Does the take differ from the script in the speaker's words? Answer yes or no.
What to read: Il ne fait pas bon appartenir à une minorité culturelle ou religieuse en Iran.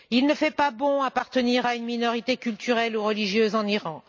no